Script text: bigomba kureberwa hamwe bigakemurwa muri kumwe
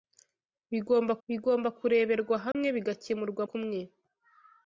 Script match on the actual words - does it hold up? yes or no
no